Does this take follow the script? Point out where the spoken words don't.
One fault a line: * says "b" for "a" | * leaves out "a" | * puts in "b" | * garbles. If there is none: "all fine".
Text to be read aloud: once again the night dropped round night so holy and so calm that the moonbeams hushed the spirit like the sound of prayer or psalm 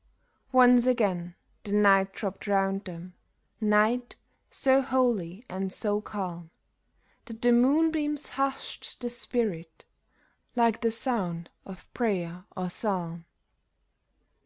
* puts in "them"